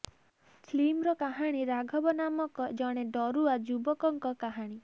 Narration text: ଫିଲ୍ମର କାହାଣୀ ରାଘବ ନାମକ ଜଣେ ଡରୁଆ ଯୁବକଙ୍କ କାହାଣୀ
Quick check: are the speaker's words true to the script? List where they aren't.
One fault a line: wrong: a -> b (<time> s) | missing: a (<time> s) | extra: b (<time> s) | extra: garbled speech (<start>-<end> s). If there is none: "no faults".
no faults